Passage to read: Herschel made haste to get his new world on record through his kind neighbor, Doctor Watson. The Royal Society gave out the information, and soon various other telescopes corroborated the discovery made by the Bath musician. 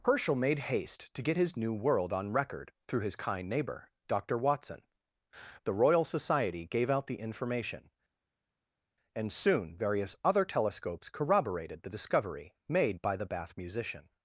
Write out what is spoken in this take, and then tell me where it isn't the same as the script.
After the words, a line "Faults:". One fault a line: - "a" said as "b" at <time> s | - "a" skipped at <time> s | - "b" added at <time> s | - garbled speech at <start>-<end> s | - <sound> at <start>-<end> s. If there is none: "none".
Herschel made haste to get his new world on record through his kind neighbor, Doctor Watson. The Royal Society gave out the information, and soon various other telescopes corroborated the discovery made by the Bath musician.
Faults:
none